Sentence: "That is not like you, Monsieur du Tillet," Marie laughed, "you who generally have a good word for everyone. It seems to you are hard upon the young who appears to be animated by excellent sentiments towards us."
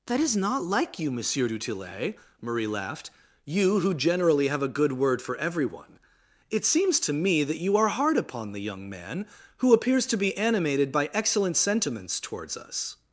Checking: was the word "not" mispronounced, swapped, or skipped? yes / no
no